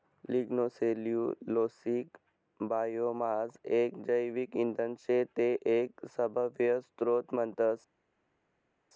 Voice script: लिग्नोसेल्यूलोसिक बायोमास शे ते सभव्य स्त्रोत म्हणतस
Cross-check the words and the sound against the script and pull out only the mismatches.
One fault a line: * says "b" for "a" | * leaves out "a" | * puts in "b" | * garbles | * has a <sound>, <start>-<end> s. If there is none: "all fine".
* puts in "एक जैविक इंधन"
* puts in "एक"